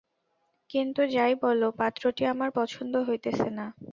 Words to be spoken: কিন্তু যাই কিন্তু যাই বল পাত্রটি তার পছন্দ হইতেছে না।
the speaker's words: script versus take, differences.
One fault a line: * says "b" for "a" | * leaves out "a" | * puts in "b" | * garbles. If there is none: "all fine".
* leaves out "কিন্তু যাই"
* says "আমার" for "তার"